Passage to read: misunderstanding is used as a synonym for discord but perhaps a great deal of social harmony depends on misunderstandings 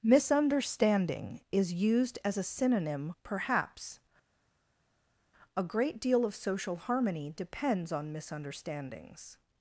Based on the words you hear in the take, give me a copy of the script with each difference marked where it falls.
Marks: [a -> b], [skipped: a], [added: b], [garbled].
misunderstanding is used as a synonym [skipped: for discord but] perhaps a great deal of social harmony depends on misunderstandings